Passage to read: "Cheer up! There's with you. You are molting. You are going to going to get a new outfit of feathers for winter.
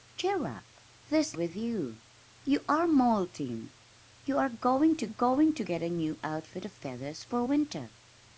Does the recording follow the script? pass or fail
pass